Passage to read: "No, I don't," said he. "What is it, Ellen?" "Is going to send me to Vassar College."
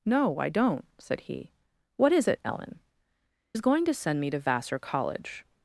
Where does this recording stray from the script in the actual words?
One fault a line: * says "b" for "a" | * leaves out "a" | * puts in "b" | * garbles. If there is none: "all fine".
all fine